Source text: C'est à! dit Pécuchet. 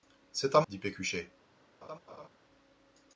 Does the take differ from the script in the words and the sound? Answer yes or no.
yes